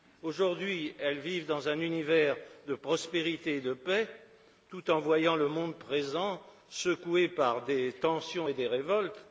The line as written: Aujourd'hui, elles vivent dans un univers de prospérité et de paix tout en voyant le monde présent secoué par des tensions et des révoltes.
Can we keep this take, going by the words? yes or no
yes